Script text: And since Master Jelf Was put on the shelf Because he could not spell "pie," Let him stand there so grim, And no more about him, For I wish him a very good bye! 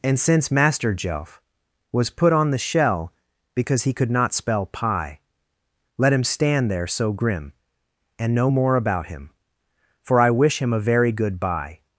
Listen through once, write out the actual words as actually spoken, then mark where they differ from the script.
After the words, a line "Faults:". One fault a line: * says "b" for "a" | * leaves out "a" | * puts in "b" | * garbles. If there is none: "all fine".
And since Master Jelf Was put on the shell Because he could not spell "pie," Let him stand there so grim, And no more about him, For I wish him a very good bye!
Faults:
* says "shell" for "shelf"